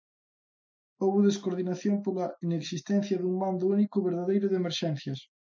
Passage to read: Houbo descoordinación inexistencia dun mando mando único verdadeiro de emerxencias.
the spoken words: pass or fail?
fail